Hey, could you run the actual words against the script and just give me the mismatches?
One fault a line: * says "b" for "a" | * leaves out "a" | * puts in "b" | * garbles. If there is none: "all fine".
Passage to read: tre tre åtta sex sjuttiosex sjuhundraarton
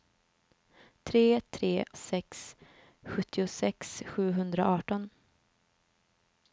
* leaves out "åtta"